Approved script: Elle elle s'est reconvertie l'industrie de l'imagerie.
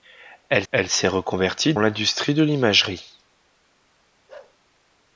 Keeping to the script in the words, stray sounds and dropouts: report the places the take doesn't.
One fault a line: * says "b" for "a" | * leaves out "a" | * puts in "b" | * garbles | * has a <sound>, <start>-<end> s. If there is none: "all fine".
* has a bark, 4.3-4.6 s